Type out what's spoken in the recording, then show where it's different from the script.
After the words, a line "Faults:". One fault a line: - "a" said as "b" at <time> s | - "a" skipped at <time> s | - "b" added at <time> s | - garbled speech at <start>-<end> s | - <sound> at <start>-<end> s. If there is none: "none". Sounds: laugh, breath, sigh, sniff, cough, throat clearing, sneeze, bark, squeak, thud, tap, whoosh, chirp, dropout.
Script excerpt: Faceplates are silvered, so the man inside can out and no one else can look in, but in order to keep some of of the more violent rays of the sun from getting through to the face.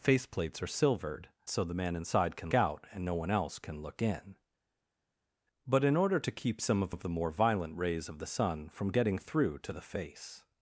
Faceplates are silvered, so the man inside can out and no one else can look in, but in order to keep some of of the more violent rays of the sun from getting through to the face.
Faults:
none